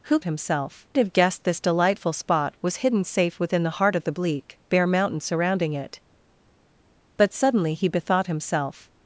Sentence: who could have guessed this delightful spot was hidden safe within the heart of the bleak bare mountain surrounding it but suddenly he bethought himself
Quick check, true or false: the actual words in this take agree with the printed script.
false